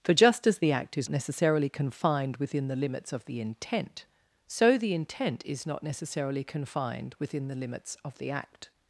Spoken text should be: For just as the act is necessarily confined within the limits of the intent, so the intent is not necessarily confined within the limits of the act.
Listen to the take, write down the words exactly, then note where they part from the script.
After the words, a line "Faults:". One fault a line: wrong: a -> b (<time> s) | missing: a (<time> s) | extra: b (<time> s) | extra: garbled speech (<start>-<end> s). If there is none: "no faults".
For just as the act is necessarily confined within the limits of the intent, so the intent is not necessarily confined within the limits of the act.
Faults:
no faults